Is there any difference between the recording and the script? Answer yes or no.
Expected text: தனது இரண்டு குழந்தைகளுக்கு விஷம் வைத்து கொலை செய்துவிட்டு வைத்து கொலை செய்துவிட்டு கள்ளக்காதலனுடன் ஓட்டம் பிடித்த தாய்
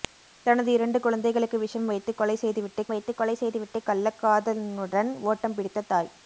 no